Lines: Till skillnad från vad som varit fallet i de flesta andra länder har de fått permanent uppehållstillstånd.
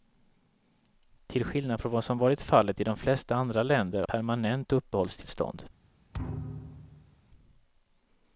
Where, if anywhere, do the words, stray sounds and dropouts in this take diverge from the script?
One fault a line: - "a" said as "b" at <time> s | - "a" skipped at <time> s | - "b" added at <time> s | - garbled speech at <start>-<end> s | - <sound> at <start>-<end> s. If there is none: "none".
- "har de fått" skipped at 4.0 s
- thud at 6.1-7.2 s